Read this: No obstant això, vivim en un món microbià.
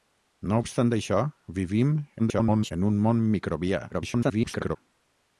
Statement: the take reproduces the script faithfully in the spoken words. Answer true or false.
false